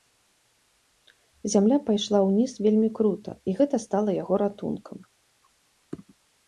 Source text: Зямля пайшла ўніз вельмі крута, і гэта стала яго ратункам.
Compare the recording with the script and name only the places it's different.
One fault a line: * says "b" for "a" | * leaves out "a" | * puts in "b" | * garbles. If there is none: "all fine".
all fine